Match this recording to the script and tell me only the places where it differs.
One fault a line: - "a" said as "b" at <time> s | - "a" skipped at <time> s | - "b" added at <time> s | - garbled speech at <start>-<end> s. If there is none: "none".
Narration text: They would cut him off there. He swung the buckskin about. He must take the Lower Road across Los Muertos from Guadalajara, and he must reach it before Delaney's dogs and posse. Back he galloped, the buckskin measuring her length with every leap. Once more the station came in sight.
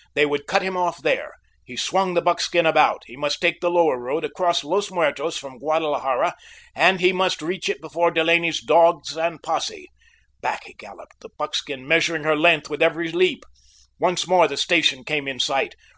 none